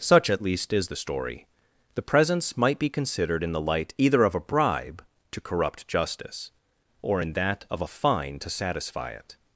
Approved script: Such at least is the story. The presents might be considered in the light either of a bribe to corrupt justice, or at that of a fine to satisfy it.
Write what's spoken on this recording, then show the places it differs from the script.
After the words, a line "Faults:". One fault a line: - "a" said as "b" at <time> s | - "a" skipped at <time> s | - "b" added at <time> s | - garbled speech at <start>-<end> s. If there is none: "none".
Such at least is the story. The presents might be considered in the light either of a bribe to corrupt justice, or in that of a fine to satisfy it.
Faults:
- "at" said as "in" at 7.2 s